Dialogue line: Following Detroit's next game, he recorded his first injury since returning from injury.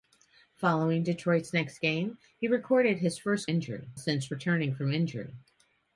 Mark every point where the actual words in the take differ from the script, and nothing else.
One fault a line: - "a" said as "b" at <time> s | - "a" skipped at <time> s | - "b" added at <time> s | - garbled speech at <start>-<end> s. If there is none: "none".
none